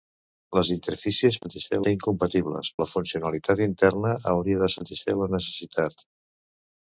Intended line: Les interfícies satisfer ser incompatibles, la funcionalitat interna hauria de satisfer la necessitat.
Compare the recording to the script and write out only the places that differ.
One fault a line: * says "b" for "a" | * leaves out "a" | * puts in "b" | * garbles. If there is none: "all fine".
all fine